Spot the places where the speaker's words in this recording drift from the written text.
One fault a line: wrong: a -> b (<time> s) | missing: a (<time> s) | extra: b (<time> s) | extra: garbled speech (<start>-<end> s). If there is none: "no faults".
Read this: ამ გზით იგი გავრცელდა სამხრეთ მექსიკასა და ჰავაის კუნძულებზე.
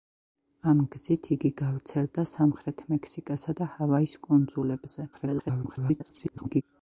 extra: garbled speech (5.1-6.6 s)